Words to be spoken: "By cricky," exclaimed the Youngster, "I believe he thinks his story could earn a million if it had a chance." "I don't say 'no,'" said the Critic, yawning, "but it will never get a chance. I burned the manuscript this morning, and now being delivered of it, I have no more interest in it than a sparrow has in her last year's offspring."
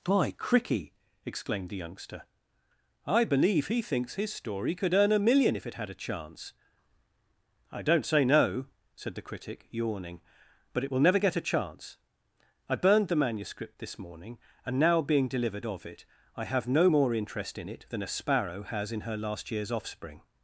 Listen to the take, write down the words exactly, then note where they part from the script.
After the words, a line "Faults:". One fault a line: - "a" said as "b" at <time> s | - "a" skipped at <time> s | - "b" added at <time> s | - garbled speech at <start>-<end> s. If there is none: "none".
"By cricky," exclaimed the Youngster, "I believe he thinks his story could earn a million if it had a chance." "I don't say 'no,'" said the Critic, yawning, "but it will never get a chance. I burned the manuscript this morning, and now being delivered of it, I have no more interest in it than a sparrow has in her last year's offspring."
Faults:
none